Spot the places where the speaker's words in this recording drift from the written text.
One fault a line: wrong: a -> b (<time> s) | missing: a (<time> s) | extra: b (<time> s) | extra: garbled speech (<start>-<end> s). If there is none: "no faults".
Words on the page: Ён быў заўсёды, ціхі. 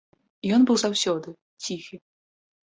no faults